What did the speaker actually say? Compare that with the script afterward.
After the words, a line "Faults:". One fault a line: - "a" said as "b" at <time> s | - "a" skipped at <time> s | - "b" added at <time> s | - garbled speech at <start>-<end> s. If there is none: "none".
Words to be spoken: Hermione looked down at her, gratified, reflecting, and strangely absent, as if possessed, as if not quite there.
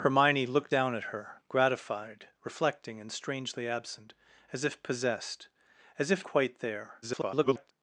Hermione looked down at her, gratified, reflecting, and strangely absent, as if possessed, as if quite there. [garbled]
Faults:
- "not" skipped at 6.2 s
- garbled speech at 7.0-7.7 s